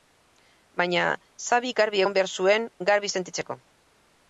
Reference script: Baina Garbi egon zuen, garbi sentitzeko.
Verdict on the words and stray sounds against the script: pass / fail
fail